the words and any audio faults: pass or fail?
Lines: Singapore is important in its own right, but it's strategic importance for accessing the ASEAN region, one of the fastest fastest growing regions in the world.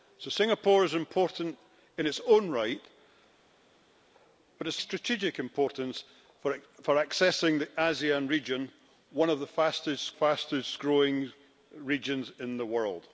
pass